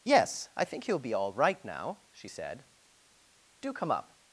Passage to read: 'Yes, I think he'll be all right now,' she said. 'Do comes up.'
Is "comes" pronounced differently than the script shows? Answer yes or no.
yes